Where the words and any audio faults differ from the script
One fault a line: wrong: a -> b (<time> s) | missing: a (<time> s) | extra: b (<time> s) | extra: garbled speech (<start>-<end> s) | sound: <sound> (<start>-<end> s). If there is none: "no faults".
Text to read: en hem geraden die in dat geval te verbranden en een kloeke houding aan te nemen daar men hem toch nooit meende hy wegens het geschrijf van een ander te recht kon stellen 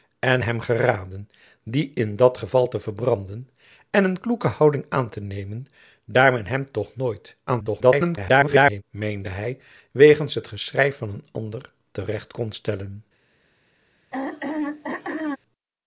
extra: garbled speech (7.5-8.8 s)
sound: throat clearing (14.1-15.4 s)